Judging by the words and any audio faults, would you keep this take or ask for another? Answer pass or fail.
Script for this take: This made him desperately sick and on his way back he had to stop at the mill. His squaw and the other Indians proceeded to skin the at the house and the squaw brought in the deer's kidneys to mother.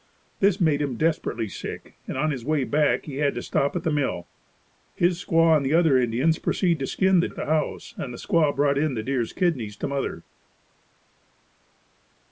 pass